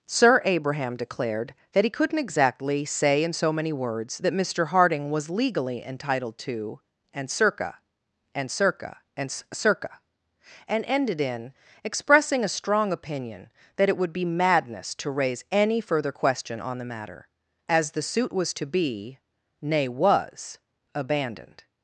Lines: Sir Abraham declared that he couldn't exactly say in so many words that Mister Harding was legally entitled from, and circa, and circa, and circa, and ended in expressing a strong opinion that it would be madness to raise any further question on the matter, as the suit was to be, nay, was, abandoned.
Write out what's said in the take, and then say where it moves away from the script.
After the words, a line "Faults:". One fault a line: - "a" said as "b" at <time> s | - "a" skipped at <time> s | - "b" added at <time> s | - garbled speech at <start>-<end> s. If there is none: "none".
Sir Abraham declared that he couldn't exactly say in so many words that Mister Harding was legally entitled to, and circa, and circa, and circa, and ended in expressing a strong opinion that it would be madness to raise any further question on the matter, as the suit was to be, nay, was, abandoned.
Faults:
- "from" said as "to" at 6.4 s